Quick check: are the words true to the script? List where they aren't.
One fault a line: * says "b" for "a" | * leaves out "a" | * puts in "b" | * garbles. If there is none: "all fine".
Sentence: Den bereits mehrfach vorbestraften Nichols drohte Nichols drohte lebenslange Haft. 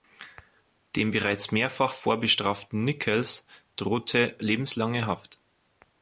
* says "Dem" for "Den"
* leaves out "Nichols drohte"